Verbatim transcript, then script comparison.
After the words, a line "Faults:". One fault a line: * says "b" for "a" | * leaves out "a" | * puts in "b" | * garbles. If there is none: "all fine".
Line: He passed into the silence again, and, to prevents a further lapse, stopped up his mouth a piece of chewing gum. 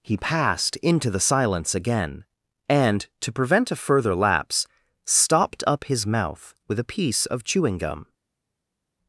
He passed into the silence again, and, to prevent a further lapse, stopped up his mouth with a piece of chewing gum.
Faults:
* says "prevent" for "prevents"
* puts in "with"